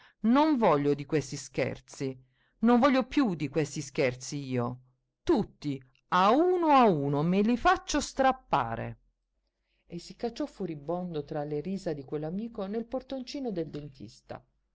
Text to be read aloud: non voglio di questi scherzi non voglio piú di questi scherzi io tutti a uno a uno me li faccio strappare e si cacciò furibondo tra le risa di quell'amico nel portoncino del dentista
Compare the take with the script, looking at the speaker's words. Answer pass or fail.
pass